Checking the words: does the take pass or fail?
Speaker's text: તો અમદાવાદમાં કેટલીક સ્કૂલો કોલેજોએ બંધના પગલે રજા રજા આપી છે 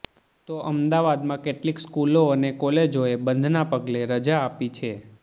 fail